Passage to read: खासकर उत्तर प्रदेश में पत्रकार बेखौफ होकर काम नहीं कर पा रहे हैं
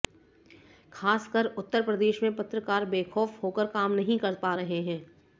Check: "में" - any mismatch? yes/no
no